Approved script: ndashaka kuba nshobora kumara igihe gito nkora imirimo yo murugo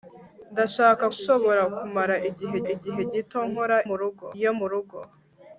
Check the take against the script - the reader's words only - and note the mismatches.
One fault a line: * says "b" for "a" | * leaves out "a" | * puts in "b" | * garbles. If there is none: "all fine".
* leaves out "kuba"
* puts in "igihe"
* says "murugo" for "imirimo"